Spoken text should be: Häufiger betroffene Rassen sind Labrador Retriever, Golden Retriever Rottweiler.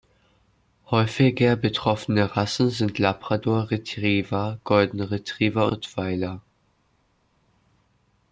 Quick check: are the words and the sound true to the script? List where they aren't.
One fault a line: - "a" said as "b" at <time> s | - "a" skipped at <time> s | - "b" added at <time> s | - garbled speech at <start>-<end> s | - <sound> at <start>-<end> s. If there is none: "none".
none